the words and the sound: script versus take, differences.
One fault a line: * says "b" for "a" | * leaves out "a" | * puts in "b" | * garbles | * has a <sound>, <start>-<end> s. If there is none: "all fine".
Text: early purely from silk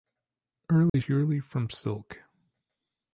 * has a dropout, 0.9-0.9 s